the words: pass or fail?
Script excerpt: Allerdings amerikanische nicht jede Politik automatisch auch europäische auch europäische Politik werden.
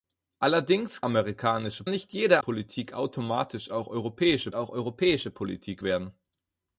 pass